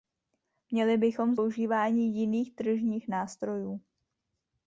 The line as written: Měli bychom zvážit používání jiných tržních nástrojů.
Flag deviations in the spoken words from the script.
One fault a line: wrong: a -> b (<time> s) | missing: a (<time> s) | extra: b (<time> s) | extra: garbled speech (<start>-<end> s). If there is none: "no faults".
missing: zvážit (1.4 s)